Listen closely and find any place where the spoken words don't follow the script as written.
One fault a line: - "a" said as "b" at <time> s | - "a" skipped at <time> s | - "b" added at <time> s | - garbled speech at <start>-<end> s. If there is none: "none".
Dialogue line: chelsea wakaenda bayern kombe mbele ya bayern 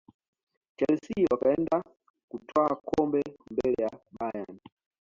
- "bayern" said as "kutwaa" at 2.3 s